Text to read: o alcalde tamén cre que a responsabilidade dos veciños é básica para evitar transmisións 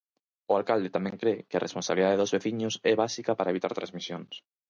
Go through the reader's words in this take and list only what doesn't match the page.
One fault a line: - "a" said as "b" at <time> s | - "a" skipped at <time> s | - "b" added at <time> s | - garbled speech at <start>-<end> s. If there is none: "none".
none